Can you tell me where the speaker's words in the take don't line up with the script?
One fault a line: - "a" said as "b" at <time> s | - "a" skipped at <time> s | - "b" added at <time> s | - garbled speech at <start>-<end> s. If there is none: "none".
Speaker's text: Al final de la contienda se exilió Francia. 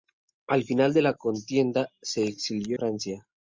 none